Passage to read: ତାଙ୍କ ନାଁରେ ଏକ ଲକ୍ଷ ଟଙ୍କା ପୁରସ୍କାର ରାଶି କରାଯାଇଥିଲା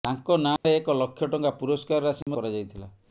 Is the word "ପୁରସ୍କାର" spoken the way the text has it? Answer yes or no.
yes